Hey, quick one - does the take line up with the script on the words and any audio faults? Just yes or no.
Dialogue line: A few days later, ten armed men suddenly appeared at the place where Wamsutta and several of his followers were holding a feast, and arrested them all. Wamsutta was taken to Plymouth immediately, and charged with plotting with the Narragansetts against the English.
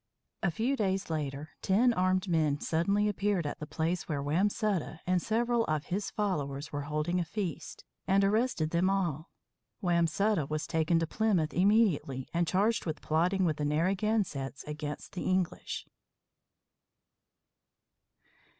yes